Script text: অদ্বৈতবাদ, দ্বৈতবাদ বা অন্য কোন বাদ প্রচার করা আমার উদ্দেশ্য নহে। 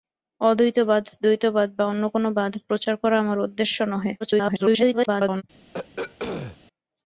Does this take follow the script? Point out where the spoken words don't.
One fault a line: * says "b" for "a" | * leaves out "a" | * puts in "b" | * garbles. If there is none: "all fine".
* garbles